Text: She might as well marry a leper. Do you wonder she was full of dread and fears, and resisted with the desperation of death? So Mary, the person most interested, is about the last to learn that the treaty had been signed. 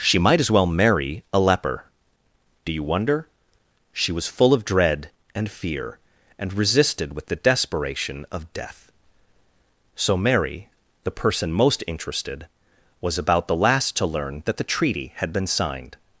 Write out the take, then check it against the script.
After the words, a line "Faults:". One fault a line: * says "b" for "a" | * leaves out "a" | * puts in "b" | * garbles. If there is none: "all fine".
She might as well marry a leper. Do you wonder she was full of dread and fear, and resisted with the desperation of death? So Mary, the person most interested, was about the last to learn that the treaty had been signed.
Faults:
* says "fear" for "fears"
* says "was" for "is"